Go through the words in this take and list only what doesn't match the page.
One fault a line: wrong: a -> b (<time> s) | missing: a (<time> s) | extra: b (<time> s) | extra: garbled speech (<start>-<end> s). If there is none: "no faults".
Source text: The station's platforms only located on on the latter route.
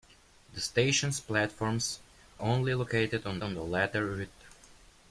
no faults